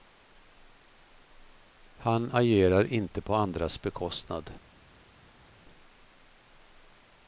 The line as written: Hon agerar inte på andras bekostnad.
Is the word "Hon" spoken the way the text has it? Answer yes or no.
no